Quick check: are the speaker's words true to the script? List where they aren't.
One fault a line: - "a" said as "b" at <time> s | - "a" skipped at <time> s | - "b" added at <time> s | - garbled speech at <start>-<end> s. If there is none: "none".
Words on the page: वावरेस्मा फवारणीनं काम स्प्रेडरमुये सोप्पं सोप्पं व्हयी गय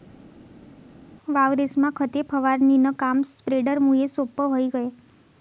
- "खते" added at 2.0 s
- "सोप्पं" skipped at 4.5 s